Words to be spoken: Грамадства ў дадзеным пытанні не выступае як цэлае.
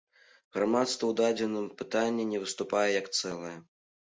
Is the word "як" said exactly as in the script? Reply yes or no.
yes